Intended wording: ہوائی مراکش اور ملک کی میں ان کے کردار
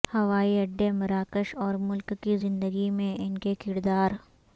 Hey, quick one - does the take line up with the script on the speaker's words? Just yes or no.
no